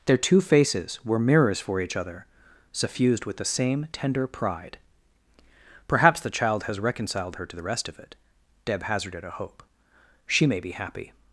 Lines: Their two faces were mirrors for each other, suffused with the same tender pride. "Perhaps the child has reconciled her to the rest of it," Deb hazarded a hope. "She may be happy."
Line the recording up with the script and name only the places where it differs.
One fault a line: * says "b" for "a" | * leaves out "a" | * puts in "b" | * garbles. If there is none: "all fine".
all fine